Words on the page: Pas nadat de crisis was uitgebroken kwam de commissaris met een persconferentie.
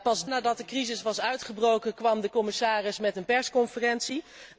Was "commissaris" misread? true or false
false